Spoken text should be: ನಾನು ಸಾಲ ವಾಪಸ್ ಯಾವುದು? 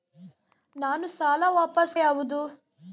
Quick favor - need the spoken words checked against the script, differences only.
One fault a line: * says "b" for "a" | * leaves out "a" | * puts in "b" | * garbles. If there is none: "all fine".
all fine